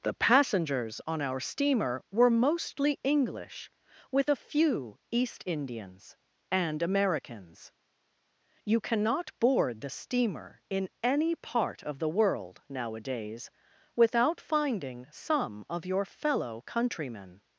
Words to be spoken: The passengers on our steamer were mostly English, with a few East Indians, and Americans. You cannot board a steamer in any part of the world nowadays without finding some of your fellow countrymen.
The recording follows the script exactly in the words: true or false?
false